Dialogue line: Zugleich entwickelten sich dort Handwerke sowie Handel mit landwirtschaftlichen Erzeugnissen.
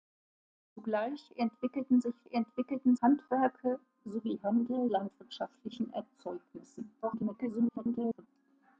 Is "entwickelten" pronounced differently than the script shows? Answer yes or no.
no